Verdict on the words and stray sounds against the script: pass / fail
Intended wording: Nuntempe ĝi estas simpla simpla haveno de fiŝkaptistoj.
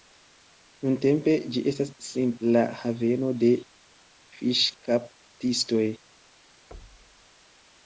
fail